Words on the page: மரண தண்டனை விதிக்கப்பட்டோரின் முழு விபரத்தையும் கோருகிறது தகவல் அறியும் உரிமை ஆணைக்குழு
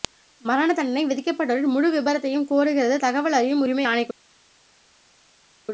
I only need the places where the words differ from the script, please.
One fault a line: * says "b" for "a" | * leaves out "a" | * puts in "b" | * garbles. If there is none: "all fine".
all fine